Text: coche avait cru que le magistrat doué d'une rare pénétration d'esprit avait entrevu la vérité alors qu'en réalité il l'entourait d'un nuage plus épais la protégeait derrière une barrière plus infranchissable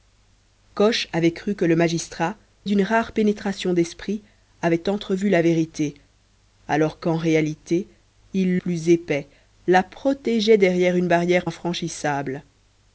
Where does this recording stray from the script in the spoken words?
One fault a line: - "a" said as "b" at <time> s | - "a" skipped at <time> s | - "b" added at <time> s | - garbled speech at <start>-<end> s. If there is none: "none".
- "doué" skipped at 2.4 s
- "l'entourait d'un nuage" skipped at 8.6 s
- "plus" skipped at 11.5 s